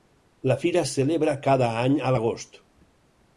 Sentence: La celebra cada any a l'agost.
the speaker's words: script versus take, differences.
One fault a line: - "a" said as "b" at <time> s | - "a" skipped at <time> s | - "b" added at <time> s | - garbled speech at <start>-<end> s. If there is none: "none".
- "fira es" added at 0.6 s